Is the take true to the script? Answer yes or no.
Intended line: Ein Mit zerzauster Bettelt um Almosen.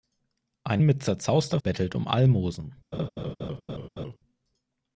yes